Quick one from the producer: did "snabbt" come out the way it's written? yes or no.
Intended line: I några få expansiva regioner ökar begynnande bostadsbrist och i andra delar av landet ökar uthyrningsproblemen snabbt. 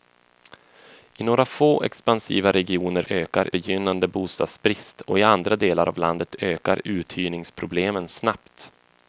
yes